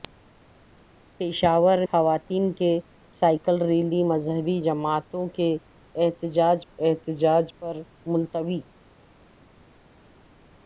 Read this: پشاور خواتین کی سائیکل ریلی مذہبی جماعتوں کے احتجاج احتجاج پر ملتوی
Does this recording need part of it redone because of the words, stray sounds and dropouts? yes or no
no